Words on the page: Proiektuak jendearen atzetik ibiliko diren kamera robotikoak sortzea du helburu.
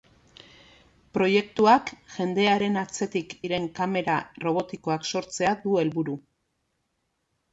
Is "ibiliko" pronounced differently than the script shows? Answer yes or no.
yes